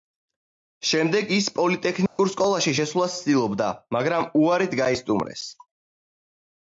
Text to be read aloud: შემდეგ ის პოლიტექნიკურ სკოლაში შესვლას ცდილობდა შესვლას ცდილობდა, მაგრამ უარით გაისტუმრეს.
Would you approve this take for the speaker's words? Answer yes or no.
no